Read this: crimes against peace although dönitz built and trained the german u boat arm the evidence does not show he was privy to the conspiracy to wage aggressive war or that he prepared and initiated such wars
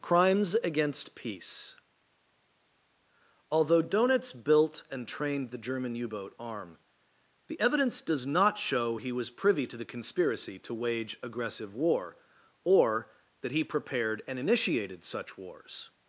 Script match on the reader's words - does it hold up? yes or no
yes